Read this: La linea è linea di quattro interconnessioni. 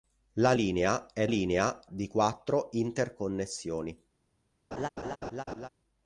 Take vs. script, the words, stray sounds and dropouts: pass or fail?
fail